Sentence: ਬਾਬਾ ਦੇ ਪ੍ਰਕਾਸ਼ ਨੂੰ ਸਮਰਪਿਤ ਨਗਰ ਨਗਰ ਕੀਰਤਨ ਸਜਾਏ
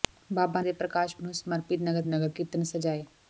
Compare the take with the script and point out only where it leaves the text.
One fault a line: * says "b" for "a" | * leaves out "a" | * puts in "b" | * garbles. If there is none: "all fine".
all fine